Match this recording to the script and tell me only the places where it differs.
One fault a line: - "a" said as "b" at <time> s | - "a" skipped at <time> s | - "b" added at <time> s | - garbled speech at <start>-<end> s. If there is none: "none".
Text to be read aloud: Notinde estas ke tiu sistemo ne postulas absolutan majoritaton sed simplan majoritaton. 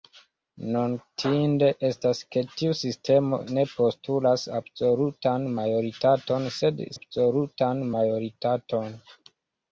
- "simplan" said as "absolutan" at 7.0 s